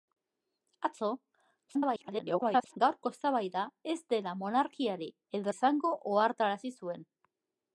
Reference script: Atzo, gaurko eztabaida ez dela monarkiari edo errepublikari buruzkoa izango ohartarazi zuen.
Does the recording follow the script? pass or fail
fail